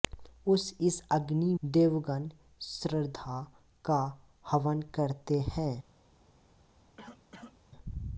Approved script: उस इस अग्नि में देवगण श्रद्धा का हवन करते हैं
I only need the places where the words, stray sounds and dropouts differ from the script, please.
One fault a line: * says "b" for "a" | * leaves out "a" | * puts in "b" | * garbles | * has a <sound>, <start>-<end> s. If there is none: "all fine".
* leaves out "में"
* has a cough, 7.0-7.6 s